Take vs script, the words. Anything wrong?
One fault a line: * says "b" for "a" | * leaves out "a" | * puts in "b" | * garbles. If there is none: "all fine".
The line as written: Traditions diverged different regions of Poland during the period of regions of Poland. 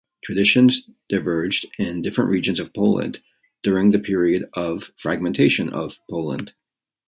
* puts in "in"
* says "fragmentation" for "regions"